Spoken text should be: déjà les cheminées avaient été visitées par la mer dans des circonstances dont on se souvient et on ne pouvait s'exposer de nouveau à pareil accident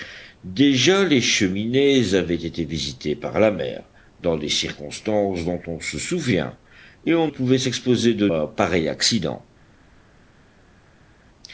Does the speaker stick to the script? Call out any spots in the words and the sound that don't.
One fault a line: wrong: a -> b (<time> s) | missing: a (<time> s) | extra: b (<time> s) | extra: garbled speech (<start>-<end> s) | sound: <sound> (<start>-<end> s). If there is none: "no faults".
missing: ne (7.3 s)
missing: nouveau (8.3 s)